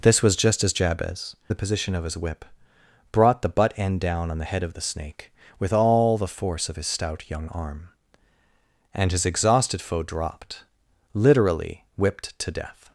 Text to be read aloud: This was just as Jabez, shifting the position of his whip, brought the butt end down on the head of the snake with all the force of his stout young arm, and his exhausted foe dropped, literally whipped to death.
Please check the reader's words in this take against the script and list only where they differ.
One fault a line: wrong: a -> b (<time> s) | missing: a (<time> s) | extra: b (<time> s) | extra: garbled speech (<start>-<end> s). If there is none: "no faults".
missing: shifting (1.4 s)